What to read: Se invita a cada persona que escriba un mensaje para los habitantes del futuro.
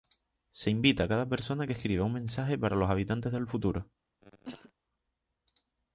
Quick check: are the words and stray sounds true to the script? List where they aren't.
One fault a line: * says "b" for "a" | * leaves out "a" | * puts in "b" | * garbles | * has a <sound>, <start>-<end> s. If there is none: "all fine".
* has a cough, 4.2-4.7 s